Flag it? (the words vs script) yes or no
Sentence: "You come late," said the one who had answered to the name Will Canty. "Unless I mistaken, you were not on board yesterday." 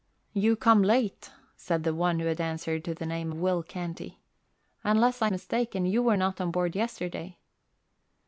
no